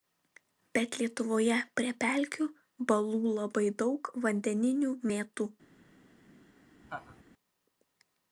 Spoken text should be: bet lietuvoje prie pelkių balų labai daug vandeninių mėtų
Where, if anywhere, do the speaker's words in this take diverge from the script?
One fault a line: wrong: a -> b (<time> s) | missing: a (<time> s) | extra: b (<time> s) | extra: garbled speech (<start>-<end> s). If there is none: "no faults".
no faults